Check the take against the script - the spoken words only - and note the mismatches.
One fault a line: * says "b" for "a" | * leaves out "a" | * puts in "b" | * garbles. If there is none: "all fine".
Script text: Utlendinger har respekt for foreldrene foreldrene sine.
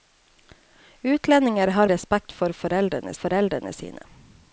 all fine